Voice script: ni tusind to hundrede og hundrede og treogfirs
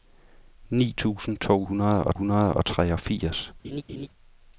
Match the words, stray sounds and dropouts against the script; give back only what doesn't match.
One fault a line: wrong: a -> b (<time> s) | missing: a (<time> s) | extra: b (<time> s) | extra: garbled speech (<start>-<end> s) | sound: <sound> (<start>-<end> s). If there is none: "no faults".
sound: laugh (3.6-4.1 s)